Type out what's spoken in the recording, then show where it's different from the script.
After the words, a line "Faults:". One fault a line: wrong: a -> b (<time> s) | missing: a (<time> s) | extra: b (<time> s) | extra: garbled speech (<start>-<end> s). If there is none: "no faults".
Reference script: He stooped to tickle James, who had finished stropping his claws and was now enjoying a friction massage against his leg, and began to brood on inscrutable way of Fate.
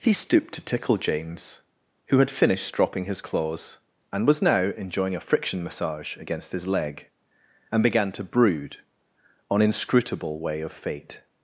He stooped to tickle James, who had finished stropping his claws and was now enjoying a friction massage against his leg, and began to brood on inscrutable way of Fate.
Faults:
no faults